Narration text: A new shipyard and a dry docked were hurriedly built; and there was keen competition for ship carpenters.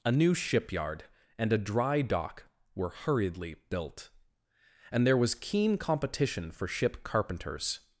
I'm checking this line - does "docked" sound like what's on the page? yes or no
no